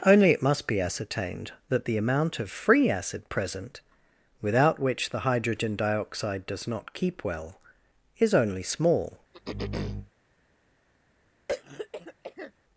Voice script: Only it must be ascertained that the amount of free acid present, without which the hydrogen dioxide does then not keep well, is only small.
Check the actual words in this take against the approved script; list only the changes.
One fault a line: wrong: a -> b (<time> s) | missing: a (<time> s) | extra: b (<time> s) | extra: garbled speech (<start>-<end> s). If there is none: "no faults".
missing: then (6.7 s)